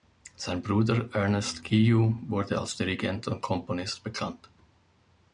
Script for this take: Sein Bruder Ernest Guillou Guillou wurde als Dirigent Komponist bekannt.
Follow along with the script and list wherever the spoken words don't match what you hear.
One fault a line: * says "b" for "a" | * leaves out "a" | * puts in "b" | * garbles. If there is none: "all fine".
* leaves out "Guillou"
* puts in "und"